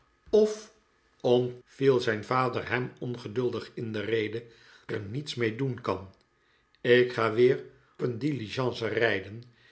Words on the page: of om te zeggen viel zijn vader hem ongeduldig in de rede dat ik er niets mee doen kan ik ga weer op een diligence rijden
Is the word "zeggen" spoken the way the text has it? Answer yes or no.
no